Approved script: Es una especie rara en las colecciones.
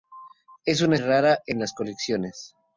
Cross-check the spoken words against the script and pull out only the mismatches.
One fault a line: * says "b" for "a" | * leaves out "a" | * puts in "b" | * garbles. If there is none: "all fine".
* leaves out "especie"